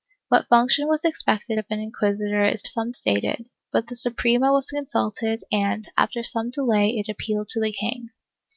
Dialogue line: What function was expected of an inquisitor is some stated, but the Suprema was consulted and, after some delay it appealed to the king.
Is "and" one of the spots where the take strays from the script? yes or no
no